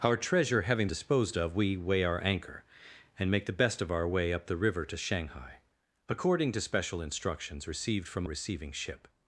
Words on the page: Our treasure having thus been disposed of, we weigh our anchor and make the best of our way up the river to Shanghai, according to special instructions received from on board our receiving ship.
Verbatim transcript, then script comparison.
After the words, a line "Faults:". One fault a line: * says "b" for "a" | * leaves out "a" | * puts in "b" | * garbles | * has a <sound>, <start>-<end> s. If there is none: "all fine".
Our treasure having disposed of, we weigh our anchor and make the best of our way up the river to Shanghai, according to special instructions received from receiving ship.
Faults:
* leaves out "thus been"
* leaves out "on board our"